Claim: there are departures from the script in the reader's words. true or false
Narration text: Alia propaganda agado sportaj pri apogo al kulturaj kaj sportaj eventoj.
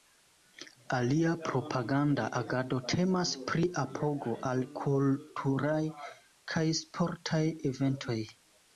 true